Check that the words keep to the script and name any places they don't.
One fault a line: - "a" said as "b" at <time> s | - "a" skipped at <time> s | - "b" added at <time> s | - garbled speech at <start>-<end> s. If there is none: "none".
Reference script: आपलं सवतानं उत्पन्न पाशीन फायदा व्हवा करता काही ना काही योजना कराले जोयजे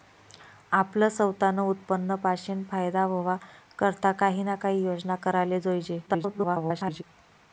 - garbled speech at 6.1-7.0 s